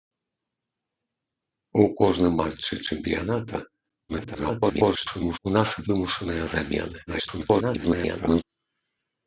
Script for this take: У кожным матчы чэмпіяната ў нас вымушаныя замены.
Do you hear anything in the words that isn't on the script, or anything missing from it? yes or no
yes